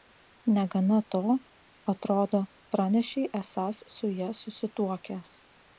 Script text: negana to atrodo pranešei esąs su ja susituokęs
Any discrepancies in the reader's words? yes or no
no